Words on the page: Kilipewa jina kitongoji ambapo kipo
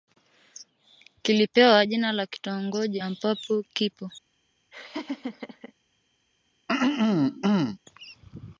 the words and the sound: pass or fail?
fail